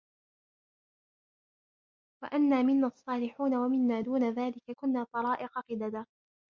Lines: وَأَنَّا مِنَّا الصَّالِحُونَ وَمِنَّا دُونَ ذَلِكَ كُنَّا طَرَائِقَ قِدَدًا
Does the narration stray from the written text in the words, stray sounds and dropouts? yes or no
no